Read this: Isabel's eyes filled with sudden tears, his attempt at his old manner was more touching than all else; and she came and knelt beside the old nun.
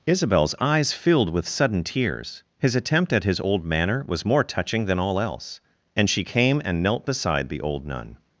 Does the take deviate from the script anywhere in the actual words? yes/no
no